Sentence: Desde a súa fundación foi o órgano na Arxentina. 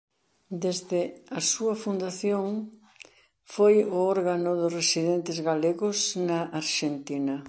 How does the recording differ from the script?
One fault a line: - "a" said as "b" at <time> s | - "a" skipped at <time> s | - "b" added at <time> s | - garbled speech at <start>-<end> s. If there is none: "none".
- "dos residentes galegos" added at 4.6 s